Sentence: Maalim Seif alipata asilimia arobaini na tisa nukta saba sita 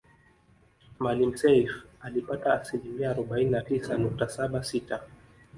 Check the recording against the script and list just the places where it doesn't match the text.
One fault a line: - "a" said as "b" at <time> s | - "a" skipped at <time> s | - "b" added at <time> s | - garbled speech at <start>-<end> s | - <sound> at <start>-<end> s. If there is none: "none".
none